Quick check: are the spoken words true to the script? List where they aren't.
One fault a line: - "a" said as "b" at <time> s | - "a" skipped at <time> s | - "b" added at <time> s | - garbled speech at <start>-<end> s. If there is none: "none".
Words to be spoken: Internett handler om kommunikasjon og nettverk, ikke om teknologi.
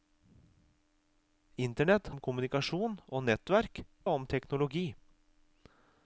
- "handler" skipped at 2.1 s
- "ikke" skipped at 3.8 s